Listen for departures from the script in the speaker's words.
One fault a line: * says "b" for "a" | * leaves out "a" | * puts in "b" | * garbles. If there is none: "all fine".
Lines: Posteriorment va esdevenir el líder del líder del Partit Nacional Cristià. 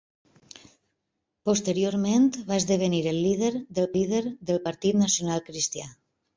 all fine